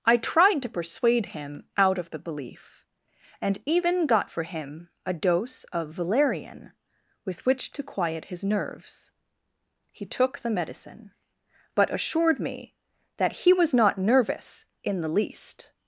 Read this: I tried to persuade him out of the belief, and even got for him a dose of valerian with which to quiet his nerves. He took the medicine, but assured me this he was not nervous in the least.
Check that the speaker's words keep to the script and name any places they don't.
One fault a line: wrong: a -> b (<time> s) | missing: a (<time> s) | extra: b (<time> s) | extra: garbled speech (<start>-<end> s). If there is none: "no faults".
wrong: this -> that (13.2 s)